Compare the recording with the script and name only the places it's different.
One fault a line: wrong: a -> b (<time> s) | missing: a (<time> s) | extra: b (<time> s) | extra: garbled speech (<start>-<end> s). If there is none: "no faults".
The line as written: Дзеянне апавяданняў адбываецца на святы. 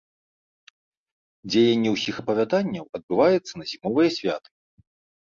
extra: ўсіх (1.9 s)
extra: зімовыя (3.7 s)